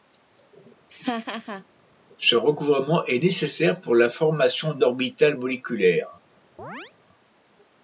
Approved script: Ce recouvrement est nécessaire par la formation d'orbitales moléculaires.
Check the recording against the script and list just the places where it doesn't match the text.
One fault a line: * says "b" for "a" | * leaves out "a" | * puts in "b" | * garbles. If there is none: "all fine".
* says "pour" for "par"